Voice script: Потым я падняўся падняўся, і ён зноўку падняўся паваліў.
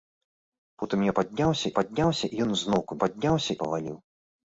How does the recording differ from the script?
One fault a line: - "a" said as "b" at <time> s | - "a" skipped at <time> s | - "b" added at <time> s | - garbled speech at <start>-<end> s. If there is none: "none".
none